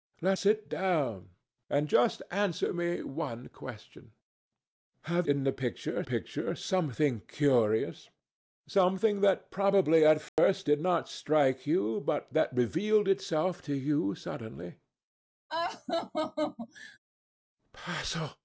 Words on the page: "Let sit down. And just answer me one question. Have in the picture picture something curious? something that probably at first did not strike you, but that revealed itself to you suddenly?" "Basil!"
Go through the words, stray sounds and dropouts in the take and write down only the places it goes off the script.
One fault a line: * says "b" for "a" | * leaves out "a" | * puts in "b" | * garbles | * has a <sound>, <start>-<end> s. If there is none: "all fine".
* has a dropout, 10.3-10.4 s
* has a laugh, 15.5-17.0 s